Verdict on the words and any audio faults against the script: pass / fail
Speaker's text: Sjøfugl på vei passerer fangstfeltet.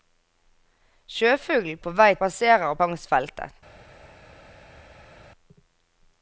pass